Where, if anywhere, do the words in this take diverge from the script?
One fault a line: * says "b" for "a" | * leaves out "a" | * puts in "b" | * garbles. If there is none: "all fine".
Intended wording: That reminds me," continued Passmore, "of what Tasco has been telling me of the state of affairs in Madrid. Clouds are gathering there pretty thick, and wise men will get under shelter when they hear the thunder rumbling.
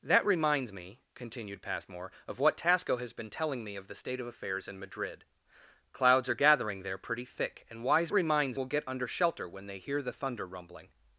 * says "reminds" for "men"